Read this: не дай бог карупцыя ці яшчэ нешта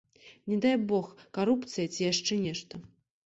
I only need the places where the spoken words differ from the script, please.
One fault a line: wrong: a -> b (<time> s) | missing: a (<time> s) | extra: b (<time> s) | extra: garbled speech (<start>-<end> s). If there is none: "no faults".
no faults